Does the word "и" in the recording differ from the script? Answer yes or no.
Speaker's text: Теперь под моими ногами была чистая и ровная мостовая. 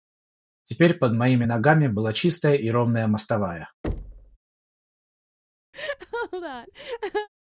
no